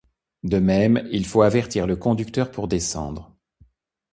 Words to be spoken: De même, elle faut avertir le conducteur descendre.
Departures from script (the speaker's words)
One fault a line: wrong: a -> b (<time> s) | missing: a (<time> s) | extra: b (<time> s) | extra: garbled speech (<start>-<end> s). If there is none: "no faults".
wrong: elle -> il (1.1 s)
extra: pour (2.5 s)